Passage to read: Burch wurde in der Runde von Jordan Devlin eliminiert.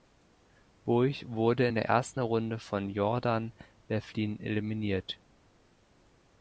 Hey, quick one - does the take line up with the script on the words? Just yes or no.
no